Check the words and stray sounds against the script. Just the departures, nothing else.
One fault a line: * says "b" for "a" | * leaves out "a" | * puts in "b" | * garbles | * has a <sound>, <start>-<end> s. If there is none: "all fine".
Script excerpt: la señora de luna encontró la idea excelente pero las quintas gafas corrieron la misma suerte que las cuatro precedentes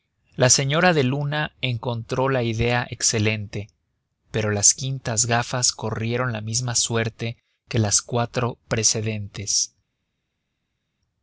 all fine